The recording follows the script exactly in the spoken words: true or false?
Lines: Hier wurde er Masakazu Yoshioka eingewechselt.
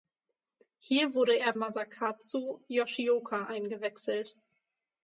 true